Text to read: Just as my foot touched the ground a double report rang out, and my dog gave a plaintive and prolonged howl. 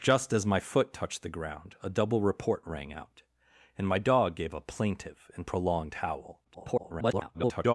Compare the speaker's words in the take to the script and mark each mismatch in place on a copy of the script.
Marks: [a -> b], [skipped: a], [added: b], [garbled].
Just as my foot touched the ground a double report rang out, and my dog gave a plaintive and prolonged howl. [garbled]